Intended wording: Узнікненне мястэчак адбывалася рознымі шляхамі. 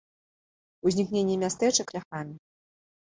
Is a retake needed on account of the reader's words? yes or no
yes